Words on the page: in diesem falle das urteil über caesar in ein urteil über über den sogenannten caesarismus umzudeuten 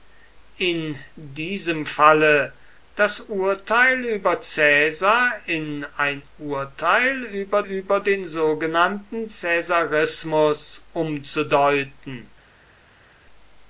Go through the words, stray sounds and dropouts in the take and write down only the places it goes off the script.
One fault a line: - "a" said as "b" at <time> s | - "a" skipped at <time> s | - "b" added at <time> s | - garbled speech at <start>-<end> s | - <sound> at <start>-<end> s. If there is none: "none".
none